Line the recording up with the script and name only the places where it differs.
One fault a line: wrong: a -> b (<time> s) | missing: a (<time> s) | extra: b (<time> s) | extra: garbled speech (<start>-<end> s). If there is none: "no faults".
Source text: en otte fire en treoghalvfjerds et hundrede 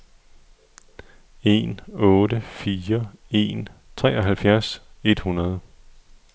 no faults